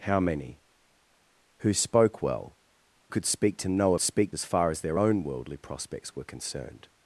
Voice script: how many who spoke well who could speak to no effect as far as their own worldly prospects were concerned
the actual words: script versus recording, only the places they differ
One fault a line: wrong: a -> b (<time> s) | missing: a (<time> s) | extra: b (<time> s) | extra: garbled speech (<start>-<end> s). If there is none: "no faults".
missing: who (2.6 s)
wrong: effect -> speak (4.0 s)